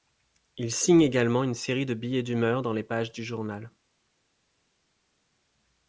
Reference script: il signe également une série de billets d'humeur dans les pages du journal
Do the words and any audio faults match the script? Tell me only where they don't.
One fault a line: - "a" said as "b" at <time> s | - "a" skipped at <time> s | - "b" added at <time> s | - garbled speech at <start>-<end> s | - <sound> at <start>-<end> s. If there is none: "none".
none